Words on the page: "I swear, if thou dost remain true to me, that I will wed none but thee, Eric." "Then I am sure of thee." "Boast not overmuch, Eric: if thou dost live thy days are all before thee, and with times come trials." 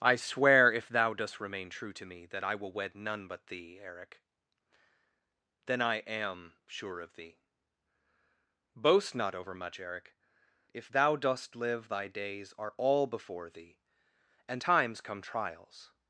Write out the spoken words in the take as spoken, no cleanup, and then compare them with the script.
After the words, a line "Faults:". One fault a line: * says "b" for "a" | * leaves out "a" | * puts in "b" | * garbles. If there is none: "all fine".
"I swear, if thou dost remain true to me, that I will wed none but thee, Eric." "Then I am sure of thee." "Boast not overmuch, Eric: if thou dost live thy days are all before thee, and times come trials."
Faults:
* leaves out "with"